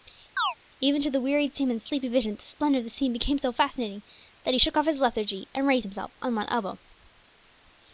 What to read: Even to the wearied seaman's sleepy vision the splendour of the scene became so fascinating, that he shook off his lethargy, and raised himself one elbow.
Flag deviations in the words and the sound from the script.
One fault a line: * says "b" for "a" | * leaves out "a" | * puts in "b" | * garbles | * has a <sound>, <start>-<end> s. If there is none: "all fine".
* has a chirp, 0.4-0.5 s
* puts in "on"